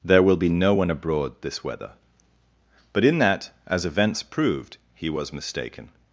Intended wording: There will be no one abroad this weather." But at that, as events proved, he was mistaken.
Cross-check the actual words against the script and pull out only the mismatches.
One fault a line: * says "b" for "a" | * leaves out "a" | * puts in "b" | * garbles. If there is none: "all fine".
* says "in" for "at"